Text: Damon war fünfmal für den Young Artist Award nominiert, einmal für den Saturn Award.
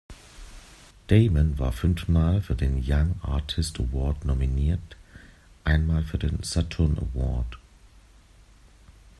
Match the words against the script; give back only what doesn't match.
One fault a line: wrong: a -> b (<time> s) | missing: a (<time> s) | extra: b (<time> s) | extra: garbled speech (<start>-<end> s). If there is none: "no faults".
no faults